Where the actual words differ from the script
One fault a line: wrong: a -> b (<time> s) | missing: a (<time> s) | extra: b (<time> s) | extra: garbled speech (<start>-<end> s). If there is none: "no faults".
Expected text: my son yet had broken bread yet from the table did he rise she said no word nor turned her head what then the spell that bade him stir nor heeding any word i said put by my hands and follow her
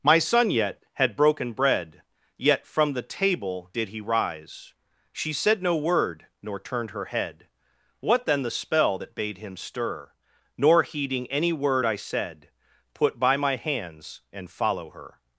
no faults